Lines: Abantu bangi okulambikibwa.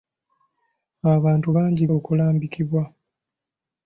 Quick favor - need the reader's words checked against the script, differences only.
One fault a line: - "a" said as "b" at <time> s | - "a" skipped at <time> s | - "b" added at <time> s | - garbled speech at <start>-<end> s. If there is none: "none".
none